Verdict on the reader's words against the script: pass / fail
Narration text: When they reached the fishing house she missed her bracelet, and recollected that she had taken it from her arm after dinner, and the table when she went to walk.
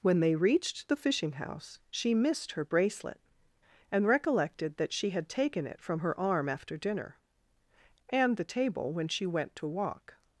pass